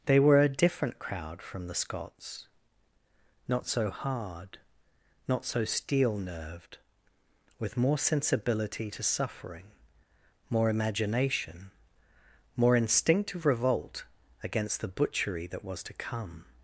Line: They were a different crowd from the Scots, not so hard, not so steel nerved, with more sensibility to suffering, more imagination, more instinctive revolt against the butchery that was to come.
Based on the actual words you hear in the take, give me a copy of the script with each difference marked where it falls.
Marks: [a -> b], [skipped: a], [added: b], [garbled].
They were a different crowd from the Scots, not so hard, not so steel nerved, with more sensibility to suffering, more imagination, more instinctive revolt against the butchery that was to come.